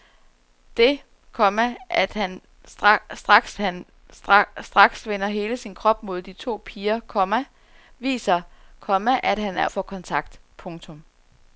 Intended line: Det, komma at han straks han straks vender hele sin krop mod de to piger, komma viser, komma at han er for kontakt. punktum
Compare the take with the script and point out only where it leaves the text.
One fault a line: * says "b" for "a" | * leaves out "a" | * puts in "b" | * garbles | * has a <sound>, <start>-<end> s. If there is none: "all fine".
all fine